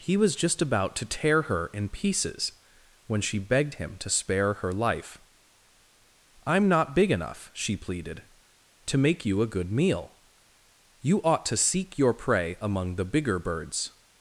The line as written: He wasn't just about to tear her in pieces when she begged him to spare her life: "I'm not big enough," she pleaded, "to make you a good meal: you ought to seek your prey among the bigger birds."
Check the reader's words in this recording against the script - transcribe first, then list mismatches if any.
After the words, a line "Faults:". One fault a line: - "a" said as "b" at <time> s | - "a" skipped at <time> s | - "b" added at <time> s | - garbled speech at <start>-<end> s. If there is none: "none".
He was just about to tear her in pieces when she begged him to spare her life: "I'm not big enough," she pleaded, "to make you a good meal: you ought to seek your prey among the bigger birds."
Faults:
- "wasn't" said as "was" at 0.2 s